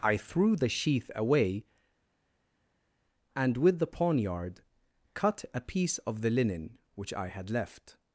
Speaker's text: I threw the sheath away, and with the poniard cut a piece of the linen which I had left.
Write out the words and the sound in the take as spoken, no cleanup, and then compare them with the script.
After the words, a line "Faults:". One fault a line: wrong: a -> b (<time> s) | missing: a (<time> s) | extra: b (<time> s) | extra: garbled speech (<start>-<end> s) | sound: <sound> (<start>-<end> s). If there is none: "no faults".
I threw the sheath away, and with the poniard cut a piece of the linen which I had left.
Faults:
no faults